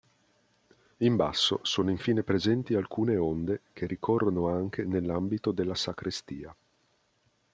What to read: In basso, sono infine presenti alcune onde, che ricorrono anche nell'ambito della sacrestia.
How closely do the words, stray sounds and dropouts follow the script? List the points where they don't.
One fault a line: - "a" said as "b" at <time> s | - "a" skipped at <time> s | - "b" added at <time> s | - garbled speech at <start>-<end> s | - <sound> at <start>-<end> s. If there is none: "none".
none